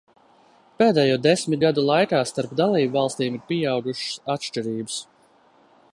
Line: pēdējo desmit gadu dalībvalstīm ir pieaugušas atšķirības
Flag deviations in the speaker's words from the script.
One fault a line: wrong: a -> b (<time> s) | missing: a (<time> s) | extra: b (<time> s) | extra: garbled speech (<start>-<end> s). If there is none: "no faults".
extra: laikā starp (1.9 s)